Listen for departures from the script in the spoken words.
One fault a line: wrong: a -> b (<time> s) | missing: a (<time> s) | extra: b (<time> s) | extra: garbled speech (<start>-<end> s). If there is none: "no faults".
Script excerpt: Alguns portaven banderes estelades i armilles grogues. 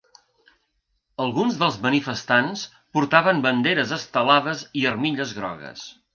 extra: dels manifestants (1.6 s)